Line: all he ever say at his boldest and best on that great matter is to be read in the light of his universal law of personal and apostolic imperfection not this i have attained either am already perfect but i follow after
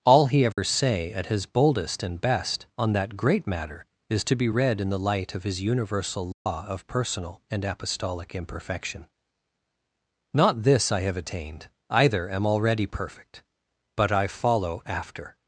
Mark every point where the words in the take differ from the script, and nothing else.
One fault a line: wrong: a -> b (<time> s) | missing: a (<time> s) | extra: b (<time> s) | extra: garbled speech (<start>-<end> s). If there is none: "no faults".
no faults